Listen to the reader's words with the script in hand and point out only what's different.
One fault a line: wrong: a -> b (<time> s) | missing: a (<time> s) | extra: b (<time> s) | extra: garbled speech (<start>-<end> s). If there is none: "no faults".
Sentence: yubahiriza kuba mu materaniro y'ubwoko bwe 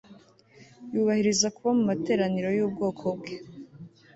no faults